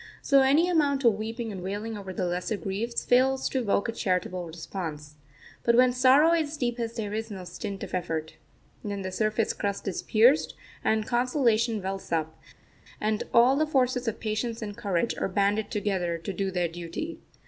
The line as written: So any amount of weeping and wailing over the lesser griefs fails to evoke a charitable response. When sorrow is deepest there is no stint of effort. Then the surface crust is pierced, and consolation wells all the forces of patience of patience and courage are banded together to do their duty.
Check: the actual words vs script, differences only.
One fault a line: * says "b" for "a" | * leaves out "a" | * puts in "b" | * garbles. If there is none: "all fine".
* puts in "But"
* puts in "up and"
* leaves out "of patience"